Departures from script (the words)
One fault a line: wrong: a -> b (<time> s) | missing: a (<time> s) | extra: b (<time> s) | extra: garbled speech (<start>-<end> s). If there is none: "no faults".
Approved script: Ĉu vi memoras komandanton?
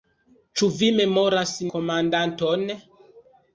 no faults